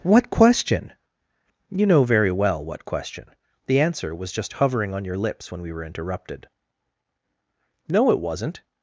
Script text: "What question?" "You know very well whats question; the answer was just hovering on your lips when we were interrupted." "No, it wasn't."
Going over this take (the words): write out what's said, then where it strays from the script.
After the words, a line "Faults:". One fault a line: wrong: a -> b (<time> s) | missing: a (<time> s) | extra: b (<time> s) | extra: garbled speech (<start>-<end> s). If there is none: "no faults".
"What question?" "You know very well what question; the answer was just hovering on your lips when we were interrupted." "No, it wasn't."
Faults:
wrong: whats -> what (2.6 s)